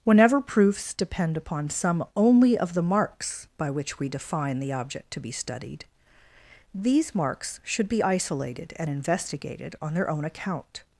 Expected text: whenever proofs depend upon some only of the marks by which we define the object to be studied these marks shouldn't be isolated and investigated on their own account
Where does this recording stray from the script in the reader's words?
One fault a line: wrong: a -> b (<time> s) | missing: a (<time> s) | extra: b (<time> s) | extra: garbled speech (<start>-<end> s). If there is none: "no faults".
wrong: shouldn't -> should (7.6 s)